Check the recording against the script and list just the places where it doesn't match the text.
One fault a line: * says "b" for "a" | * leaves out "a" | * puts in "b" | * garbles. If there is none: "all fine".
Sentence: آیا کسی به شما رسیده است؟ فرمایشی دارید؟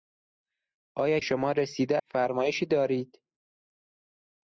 * leaves out "کسی به"
* leaves out "است"